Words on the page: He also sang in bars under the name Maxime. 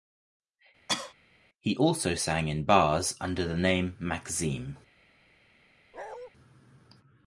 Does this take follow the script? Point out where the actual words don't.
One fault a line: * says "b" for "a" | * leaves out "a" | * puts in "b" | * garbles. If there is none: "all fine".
all fine